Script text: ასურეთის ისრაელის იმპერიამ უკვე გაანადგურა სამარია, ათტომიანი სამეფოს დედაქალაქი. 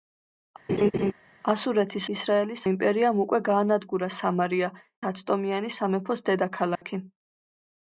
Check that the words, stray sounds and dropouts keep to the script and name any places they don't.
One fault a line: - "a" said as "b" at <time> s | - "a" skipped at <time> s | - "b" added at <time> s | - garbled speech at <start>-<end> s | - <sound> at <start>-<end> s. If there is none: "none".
- laugh at 0.7-1.1 s
- dropout at 6.8-6.8 s